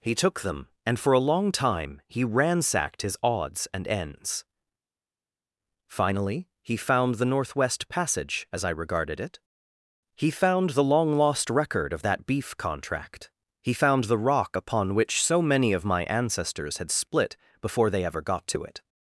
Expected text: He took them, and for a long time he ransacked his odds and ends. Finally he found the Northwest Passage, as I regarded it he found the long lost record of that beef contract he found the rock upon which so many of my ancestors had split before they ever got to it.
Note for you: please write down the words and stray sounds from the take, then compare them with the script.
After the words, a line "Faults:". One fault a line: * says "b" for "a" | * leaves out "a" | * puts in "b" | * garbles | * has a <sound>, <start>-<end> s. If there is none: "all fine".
He took them, and for a long time he ransacked his odds and ends. Finally he found the Northwest Passage, as I regarded it he found the long lost record of that beef contract he found the rock upon which so many of my ancestors had split before they ever got to it.
Faults:
all fine